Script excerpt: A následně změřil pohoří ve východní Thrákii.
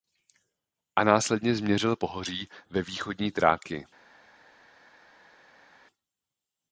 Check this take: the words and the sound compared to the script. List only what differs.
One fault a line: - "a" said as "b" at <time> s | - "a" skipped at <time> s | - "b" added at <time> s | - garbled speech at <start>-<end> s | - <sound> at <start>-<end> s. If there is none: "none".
none